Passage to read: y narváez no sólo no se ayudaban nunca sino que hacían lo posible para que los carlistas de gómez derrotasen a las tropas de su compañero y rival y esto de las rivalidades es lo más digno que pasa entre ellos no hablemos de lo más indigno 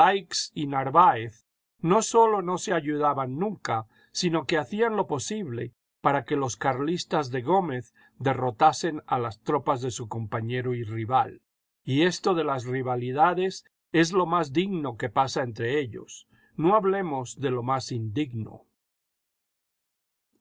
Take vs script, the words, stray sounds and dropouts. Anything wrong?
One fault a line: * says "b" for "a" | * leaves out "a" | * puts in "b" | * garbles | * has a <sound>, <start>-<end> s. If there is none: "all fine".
all fine